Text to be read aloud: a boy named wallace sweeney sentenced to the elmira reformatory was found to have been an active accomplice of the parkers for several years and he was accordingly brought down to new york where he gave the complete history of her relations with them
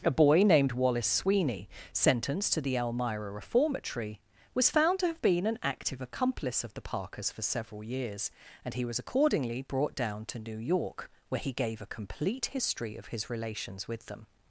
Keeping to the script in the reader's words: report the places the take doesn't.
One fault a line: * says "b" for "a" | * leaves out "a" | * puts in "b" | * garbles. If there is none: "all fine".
* says "a" for "the"
* says "his" for "her"